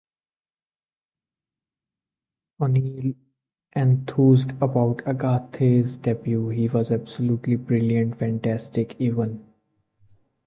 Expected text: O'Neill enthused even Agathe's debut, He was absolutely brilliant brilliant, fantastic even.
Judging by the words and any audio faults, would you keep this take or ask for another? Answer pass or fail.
fail